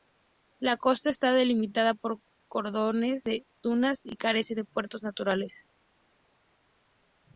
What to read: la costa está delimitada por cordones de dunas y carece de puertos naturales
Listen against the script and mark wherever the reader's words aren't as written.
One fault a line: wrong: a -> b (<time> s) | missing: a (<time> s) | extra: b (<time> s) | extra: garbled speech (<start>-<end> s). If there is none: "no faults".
no faults